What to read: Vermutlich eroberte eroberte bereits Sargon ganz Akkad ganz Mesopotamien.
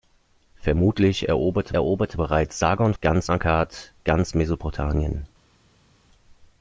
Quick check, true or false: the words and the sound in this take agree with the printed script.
true